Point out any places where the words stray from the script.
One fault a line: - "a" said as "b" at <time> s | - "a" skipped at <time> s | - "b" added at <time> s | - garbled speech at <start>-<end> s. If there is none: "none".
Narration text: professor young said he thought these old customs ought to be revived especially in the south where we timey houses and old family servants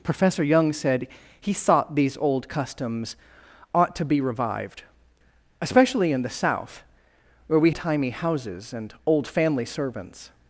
none